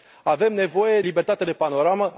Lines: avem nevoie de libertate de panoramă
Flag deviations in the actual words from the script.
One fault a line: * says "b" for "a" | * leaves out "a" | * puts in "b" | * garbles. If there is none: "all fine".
* leaves out "de"